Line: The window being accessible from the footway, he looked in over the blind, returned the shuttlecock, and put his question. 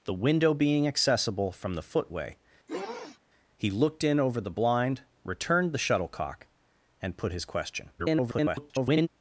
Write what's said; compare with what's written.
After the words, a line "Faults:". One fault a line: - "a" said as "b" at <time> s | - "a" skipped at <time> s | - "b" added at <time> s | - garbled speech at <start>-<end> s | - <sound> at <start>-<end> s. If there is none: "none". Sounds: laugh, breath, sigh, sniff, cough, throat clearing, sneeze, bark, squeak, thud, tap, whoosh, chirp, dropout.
The window being accessible from the footway, he looked in over the blind, returned the shuttlecock, and put his question. [garbled]
Faults:
- sniff at 2.7-3.2 s
- garbled speech at 8.0-9.1 s